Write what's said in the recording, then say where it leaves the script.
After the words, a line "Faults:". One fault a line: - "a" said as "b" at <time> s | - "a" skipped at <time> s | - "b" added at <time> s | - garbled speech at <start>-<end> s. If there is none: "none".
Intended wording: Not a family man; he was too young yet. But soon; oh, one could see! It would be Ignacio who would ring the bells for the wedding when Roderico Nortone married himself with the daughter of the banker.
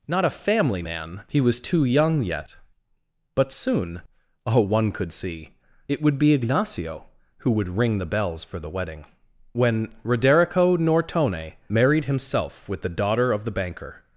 Not a family man; he was too young yet. But soon; oh, one could see! It would be Ignacio who would ring the bells for the wedding when Roderico Nortone married himself with the daughter of the banker.
Faults:
none